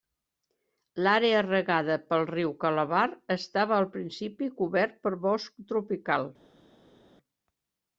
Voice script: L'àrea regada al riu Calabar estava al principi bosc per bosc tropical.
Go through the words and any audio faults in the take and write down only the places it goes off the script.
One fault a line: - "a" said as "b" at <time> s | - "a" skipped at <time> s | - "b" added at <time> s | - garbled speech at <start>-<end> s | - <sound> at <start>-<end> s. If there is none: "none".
- "al" said as "pel" at 2.1 s
- "bosc" said as "cobert" at 4.6 s